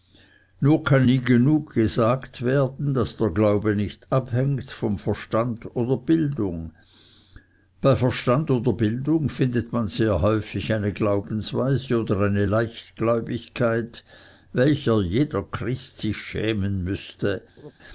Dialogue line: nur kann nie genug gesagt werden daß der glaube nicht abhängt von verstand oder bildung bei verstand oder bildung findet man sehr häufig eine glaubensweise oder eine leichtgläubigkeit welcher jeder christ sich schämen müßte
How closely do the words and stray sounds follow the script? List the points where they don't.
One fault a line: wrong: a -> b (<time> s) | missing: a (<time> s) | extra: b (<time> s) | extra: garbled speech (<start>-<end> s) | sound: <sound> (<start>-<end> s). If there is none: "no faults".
sound: laugh (17.6-17.7 s)